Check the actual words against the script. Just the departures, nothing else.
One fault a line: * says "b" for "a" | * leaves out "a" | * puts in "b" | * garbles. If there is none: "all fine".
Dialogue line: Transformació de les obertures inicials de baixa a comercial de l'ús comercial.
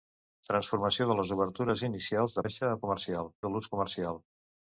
all fine